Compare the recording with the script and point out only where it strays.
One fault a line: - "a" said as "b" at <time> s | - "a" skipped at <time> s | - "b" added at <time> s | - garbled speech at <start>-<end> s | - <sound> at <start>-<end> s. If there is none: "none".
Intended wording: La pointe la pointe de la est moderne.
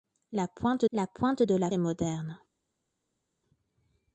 none